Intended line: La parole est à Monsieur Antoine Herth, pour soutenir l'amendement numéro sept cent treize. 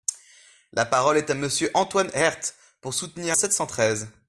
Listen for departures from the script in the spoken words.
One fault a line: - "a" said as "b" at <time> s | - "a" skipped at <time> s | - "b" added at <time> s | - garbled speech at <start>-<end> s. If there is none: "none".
- "l'amendement numéro" skipped at 3.4 s